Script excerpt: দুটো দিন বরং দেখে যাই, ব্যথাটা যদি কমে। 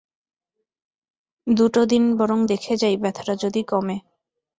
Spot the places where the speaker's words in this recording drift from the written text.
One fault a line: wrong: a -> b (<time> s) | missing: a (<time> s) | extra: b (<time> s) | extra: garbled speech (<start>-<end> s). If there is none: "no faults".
no faults